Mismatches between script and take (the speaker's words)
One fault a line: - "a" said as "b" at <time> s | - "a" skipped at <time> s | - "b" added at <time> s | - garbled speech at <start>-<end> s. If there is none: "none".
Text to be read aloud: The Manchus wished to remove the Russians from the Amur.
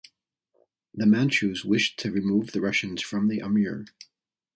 none